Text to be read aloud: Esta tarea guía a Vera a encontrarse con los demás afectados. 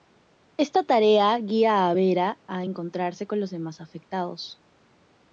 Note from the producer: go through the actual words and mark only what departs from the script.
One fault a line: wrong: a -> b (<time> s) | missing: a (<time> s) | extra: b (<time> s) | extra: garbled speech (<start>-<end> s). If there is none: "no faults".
no faults